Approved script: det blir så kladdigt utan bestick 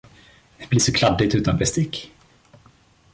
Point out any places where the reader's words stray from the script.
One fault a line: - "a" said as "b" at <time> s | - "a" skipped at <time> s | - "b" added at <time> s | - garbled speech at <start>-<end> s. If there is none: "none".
none